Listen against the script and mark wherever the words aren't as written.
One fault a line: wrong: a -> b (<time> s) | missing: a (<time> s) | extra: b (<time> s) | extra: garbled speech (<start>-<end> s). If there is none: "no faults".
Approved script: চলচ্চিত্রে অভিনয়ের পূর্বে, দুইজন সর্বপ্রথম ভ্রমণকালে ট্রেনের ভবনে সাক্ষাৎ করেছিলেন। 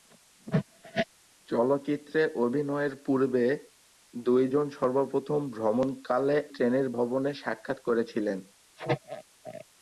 no faults